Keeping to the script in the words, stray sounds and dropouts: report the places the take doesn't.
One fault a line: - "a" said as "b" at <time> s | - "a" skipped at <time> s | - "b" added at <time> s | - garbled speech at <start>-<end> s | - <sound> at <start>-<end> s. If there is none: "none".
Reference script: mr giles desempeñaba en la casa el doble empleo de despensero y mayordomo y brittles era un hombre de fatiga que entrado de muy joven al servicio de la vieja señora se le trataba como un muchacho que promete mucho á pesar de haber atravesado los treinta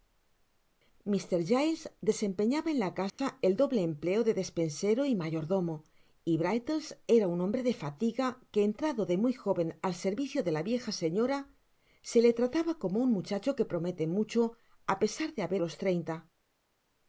- dropout at 3.1-3.2 s
- "atravesado" skipped at 15.6 s